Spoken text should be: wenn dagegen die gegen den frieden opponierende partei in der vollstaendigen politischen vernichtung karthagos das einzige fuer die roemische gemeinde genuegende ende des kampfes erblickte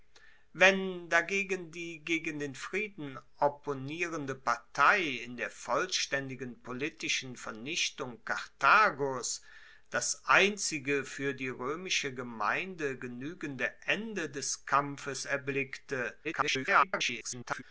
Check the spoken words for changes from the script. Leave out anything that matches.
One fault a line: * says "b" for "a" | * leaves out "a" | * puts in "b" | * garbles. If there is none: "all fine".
* garbles